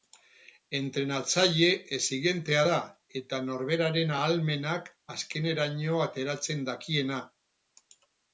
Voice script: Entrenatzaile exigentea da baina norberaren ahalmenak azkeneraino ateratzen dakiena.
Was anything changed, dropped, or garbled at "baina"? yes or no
yes